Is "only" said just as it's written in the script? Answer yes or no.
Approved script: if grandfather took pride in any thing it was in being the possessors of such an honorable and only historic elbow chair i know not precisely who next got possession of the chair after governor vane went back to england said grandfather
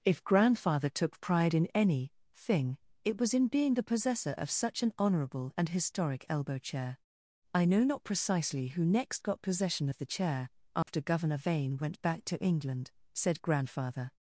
no